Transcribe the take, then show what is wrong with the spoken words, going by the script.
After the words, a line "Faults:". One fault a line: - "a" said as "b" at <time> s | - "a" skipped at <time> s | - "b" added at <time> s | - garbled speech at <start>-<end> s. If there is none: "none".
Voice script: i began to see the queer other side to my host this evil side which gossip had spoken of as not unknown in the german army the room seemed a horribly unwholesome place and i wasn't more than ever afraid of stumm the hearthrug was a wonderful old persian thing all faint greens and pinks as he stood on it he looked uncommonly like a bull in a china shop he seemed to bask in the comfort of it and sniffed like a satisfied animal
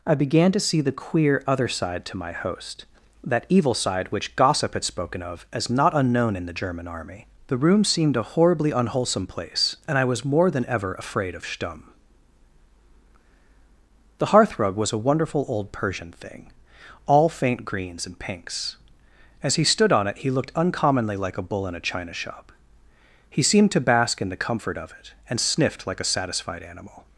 i began to see the queer other side to my host that evil side which gossip had spoken of as not unknown in the german army the room seemed a horribly unwholesome place and i was more than ever afraid of stumm the hearthrug was a wonderful old persian thing all faint greens and pinks as he stood on it he looked uncommonly like a bull in a china shop he seemed to bask in the comfort of it and sniffed like a satisfied animal
Faults:
- "this" said as "that" at 3.2 s
- "wasn't" said as "was" at 10.0 s